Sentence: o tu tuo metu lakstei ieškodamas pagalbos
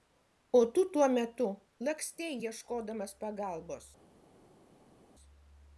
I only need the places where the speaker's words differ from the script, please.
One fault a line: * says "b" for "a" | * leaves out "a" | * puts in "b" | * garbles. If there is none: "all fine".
all fine